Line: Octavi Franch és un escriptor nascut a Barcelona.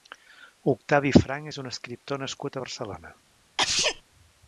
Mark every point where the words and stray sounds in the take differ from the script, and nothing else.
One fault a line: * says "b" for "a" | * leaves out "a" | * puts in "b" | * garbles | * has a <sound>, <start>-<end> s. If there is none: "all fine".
* has a sneeze, 3.6-4.0 s